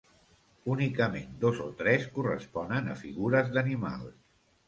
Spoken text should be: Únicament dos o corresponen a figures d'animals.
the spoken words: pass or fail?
fail